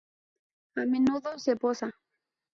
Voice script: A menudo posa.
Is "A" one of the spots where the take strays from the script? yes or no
no